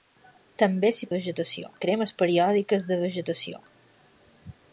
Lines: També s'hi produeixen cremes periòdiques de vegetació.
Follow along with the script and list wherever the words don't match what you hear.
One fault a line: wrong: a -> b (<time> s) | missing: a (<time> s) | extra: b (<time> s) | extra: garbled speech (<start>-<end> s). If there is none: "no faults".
wrong: produeixen -> vegetació (1.2 s)